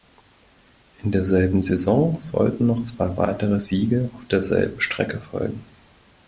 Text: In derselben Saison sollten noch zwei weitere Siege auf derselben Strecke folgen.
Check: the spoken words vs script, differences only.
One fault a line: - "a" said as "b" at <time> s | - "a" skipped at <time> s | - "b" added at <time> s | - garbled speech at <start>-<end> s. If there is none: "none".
none